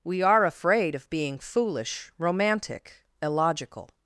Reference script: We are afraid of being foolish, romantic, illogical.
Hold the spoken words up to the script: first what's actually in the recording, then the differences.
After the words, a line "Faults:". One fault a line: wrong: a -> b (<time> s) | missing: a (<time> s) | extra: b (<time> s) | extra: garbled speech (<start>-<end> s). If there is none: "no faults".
We are afraid of being foolish, romantic, illogical.
Faults:
no faults